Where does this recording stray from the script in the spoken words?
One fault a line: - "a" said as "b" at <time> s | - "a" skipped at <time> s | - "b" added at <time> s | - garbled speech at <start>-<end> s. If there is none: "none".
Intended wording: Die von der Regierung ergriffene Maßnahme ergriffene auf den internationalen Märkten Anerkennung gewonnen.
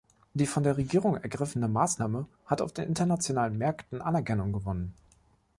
- "ergriffene" said as "hat" at 2.5 s